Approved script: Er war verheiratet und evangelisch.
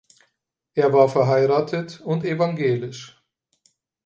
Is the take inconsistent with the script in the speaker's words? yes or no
no